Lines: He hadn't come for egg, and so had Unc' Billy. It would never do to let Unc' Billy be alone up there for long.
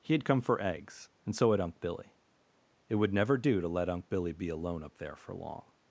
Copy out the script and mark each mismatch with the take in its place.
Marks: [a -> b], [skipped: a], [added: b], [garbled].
He [hadn't -> had] come for [egg, -> eggs] and so had Unc' Billy. It would never do to let Unc' Billy be alone up there for long.